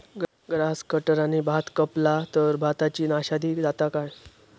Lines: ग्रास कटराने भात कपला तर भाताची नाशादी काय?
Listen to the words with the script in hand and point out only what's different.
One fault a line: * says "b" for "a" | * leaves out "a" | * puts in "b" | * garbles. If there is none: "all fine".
* puts in "जाता"